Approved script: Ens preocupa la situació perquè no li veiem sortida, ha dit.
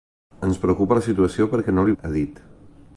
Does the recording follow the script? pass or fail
fail